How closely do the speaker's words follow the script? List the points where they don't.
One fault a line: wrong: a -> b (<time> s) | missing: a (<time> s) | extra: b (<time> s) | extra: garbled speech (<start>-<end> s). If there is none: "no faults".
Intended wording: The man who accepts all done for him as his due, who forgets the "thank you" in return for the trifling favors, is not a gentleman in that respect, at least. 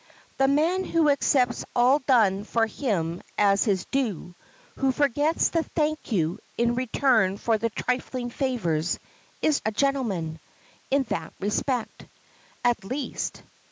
missing: not (9.6 s)